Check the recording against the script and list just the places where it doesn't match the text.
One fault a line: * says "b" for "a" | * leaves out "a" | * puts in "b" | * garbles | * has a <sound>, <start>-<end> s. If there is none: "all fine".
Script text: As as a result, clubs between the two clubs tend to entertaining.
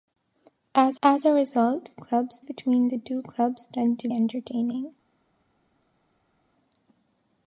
all fine